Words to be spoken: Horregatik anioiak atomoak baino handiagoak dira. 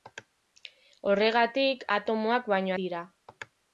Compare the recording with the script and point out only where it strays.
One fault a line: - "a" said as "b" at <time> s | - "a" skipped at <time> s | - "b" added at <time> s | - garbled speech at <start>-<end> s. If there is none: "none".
- "anioiak" skipped at 1.9 s
- "handiagoak" skipped at 2.8 s